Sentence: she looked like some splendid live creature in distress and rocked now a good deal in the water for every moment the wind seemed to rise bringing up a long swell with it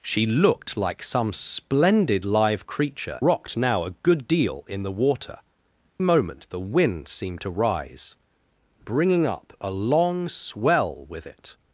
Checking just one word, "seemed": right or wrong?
right